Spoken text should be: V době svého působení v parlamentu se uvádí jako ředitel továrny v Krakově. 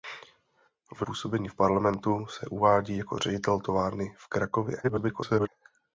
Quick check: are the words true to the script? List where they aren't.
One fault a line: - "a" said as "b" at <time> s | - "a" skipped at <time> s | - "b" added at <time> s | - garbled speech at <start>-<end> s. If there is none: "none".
- "době svého" skipped at 1.1 s
- garbled speech at 4.8-5.5 s